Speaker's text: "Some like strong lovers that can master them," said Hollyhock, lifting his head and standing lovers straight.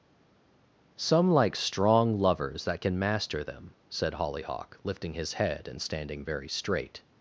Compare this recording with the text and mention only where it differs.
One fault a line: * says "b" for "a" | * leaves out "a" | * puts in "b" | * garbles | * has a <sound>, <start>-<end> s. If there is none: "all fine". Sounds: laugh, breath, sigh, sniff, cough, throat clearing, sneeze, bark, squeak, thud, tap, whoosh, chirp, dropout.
* says "very" for "lovers"